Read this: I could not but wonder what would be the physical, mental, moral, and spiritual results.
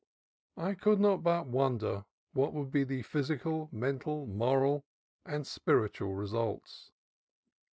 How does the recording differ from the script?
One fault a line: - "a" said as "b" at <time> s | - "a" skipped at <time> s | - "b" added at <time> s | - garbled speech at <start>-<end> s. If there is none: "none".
none